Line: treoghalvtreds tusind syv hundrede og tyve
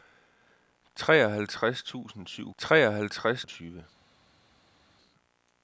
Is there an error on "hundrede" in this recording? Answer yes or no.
yes